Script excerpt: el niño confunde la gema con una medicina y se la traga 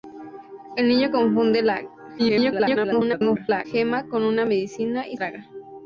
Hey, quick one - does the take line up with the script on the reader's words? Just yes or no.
no